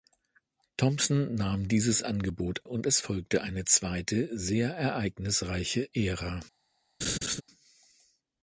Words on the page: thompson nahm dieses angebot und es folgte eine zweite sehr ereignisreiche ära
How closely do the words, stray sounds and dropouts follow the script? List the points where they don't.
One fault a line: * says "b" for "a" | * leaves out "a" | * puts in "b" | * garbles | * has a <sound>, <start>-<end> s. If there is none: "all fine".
* has a laugh, 7.0-7.4 s